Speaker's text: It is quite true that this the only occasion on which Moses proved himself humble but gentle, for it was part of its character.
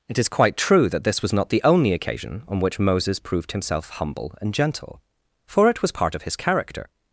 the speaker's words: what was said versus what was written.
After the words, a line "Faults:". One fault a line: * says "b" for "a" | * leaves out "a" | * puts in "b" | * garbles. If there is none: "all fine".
It is quite true that this was not the only occasion on which Moses proved himself humble and gentle, for it was part of his character.
Faults:
* puts in "was not"
* says "and" for "but"
* says "his" for "its"